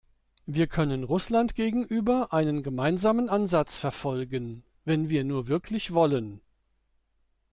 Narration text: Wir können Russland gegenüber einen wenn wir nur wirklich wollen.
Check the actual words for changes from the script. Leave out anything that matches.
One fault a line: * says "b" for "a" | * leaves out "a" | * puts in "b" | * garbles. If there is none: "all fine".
* puts in "gemeinsamen Ansatz verfolgen"